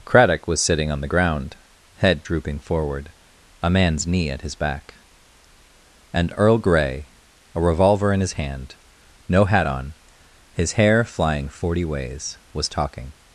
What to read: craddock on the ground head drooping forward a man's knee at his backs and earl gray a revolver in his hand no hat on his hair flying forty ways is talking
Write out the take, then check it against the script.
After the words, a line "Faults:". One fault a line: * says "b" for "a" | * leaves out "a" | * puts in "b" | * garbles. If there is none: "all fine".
craddock was sitting on the ground head drooping forward a man's knee at his back and earl gray a revolver in his hand no hat on his hair flying forty ways was talking
Faults:
* puts in "was sitting"
* says "back" for "backs"
* says "was" for "is"